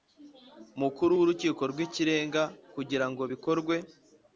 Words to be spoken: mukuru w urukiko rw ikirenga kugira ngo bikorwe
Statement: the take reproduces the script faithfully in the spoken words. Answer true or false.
true